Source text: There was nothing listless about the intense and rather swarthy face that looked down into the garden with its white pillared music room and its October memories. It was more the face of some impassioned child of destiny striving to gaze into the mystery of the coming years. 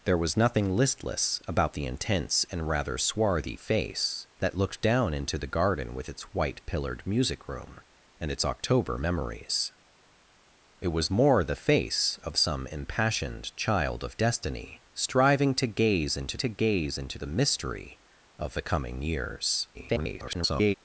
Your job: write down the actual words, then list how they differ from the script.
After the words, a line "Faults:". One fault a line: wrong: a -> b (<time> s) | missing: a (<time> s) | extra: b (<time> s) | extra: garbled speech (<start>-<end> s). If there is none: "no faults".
There was nothing listless about the intense and rather swarthy face that looked down into the garden with its white pillared music room and its October memories. It was more the face of some impassioned child of destiny striving to gaze into to gaze into the mystery of the coming years. [garbled]
Faults:
extra: to gaze into (16.4 s)
extra: garbled speech (19.7-20.7 s)